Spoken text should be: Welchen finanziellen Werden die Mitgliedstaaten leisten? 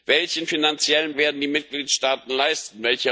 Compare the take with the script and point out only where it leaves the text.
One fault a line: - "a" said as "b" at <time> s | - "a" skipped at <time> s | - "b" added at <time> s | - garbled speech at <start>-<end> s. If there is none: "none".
none